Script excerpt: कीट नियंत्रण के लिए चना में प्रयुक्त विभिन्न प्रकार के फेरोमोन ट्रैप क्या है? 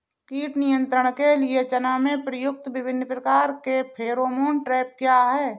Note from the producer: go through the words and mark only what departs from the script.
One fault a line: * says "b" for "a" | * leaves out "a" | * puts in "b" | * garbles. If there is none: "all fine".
all fine